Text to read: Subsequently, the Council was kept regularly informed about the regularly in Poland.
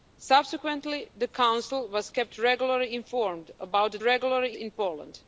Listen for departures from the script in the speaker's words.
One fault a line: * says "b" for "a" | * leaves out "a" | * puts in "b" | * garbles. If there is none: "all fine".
all fine